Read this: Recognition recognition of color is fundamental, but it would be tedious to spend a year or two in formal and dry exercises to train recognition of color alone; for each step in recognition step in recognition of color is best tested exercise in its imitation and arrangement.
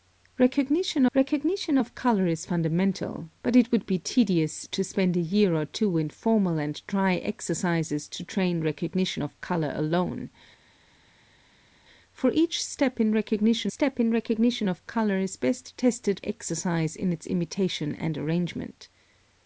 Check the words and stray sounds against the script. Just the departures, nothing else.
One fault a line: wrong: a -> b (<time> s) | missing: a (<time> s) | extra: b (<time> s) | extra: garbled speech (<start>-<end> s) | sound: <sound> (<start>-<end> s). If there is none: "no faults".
no faults